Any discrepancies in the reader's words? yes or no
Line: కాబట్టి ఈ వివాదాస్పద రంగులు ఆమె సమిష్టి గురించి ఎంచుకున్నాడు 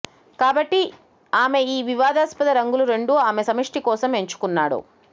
yes